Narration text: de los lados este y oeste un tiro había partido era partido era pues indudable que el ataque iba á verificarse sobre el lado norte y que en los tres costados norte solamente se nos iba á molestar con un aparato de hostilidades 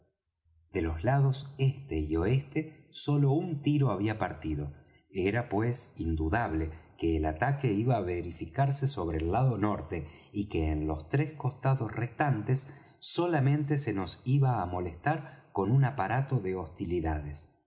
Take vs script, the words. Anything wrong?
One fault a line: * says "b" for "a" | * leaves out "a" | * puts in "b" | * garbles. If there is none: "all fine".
* puts in "sólo"
* leaves out "partido era"
* says "restantes" for "norte"